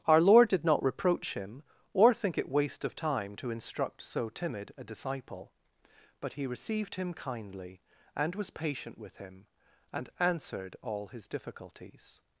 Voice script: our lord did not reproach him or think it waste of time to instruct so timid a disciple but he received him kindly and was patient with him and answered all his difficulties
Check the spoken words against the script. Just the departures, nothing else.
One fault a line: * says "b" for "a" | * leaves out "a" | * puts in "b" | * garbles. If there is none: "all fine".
all fine